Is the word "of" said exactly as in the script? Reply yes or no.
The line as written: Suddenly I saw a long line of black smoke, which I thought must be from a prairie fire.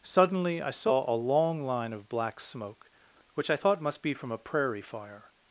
yes